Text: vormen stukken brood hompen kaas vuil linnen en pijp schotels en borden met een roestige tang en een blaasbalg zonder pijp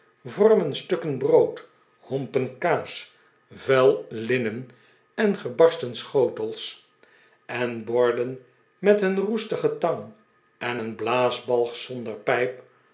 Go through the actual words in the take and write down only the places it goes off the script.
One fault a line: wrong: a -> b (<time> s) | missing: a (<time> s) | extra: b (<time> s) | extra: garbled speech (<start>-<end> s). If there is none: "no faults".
wrong: pijp -> gebarsten (5.4 s)